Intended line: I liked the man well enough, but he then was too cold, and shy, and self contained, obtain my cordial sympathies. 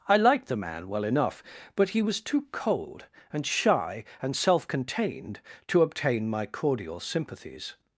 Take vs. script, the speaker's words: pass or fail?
fail